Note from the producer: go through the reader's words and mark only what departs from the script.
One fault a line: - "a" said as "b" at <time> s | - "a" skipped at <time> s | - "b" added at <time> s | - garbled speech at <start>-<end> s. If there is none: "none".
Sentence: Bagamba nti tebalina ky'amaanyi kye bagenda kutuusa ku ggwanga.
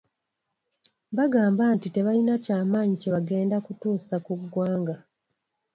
none